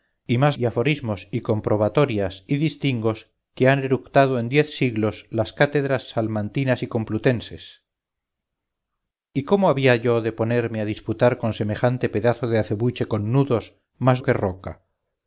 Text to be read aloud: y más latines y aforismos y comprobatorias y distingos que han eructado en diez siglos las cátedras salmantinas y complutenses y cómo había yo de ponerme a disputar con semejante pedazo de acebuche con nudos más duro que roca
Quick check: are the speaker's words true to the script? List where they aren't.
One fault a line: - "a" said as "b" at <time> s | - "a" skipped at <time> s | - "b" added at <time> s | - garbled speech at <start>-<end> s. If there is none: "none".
- "latines" skipped at 0.6 s
- "duro" skipped at 14.2 s